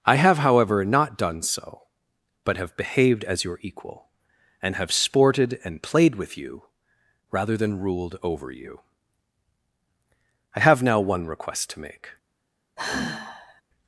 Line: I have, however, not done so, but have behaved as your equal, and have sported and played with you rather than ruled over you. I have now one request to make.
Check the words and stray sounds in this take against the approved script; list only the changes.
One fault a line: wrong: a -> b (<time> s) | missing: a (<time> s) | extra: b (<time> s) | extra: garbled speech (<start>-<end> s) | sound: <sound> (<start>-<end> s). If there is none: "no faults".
sound: sigh (12.8-13.6 s)